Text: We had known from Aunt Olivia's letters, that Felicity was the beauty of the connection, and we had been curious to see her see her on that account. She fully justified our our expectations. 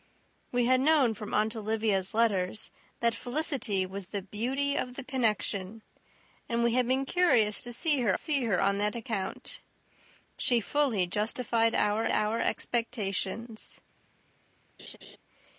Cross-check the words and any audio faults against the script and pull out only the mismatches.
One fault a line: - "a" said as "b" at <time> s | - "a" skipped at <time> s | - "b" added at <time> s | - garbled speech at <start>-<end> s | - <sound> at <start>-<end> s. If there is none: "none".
- laugh at 14.8-15.2 s